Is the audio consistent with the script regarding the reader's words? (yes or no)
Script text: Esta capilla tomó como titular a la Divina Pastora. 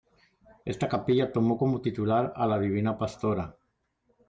yes